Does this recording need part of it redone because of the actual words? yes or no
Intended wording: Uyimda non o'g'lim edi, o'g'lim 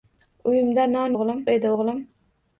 no